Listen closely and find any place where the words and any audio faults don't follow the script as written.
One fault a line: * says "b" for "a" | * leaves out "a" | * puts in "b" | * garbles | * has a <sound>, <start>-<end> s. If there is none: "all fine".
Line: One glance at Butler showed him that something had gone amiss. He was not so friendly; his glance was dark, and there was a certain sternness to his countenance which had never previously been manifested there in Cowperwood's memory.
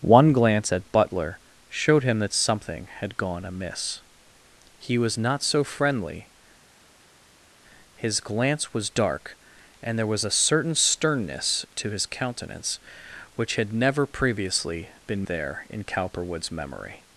* leaves out "manifested"